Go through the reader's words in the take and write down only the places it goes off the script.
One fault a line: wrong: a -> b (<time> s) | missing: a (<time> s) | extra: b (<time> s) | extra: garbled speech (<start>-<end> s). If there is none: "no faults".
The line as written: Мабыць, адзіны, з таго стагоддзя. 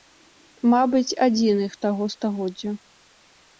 no faults